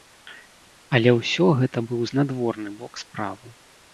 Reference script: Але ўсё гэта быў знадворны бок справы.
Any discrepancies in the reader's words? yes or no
no